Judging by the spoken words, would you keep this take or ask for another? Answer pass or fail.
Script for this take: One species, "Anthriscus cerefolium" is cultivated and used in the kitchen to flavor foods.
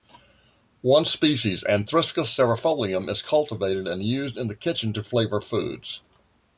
pass